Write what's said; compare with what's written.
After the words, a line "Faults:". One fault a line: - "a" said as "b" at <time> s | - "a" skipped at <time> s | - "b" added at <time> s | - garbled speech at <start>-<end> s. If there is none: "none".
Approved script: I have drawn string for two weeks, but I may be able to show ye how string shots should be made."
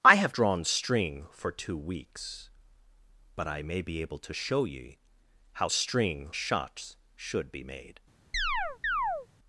I have drawn string for two weeks, but I may be able to show ye how string shots should be made."
Faults:
none